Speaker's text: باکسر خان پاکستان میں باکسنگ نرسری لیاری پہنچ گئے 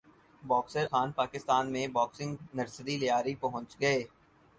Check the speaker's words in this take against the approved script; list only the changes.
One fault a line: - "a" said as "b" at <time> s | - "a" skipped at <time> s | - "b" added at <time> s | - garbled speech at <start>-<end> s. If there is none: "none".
none